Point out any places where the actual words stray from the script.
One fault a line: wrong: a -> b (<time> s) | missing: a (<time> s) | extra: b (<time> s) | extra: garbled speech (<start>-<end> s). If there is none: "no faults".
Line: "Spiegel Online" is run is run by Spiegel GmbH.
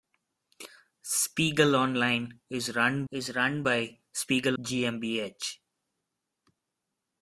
no faults